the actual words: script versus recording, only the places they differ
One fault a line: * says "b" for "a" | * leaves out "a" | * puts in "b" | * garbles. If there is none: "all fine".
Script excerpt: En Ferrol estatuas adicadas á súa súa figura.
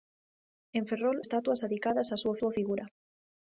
all fine